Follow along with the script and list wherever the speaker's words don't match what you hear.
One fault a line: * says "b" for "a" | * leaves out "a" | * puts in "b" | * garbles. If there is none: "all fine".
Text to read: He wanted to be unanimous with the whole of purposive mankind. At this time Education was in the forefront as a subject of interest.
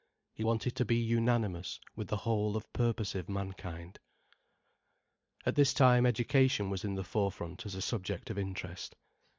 all fine